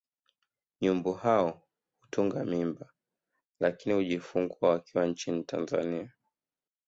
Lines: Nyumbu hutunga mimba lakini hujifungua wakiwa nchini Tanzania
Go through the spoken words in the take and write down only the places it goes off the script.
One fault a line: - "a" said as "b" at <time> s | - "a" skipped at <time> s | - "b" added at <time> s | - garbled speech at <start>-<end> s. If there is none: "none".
- "hao" added at 1.1 s